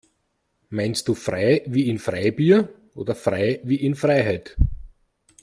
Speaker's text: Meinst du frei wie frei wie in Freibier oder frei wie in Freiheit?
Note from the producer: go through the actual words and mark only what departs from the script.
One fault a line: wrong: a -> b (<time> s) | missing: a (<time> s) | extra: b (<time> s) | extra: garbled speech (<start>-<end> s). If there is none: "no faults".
missing: frei wie (1.9 s)